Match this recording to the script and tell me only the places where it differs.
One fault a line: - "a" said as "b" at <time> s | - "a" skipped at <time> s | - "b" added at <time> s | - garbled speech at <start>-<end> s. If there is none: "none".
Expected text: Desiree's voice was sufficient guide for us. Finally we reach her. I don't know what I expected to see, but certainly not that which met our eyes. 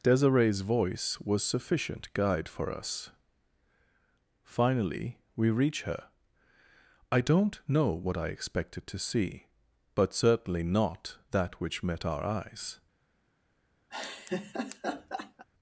none